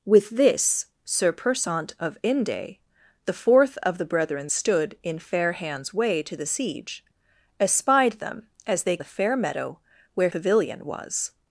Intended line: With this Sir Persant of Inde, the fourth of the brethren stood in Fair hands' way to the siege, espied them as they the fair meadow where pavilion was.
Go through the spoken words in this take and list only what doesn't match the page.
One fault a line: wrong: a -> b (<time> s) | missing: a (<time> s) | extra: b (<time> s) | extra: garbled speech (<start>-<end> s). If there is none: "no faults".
no faults